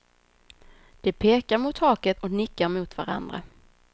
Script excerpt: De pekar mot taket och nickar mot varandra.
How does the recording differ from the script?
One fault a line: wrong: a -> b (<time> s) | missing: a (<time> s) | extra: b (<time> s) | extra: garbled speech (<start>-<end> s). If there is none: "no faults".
no faults